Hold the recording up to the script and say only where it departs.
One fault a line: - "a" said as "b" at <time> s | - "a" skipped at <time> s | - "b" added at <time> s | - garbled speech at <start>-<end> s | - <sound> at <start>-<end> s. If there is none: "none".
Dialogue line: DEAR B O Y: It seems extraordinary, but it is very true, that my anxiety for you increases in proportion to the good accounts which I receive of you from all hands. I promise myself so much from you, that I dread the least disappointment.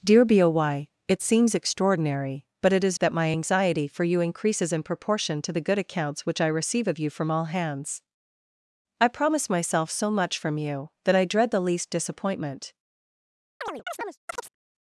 - "very true" skipped at 3.0 s
- chirp at 13.6-14.6 s